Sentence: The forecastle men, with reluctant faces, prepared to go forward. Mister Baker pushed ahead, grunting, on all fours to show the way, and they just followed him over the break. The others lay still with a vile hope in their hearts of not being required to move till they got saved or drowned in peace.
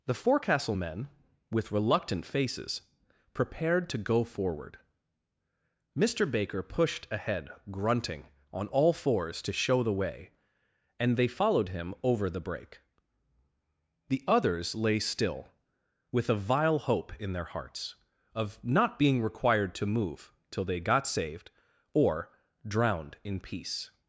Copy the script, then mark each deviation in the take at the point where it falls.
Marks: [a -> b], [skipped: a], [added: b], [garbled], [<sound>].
The forecastle men, with reluctant faces, prepared to go forward. Mister Baker pushed ahead, grunting, on all fours to show the way, and they [skipped: just] followed him over the break. The others lay still with a vile hope in their hearts of not being required to move till they got saved or drowned in peace.